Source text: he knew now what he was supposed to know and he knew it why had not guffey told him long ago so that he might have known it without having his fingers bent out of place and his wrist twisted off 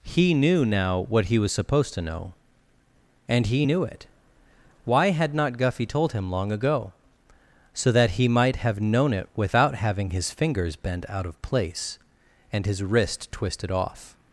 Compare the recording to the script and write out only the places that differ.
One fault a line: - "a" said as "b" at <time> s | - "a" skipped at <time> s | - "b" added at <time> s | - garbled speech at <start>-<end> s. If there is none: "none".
none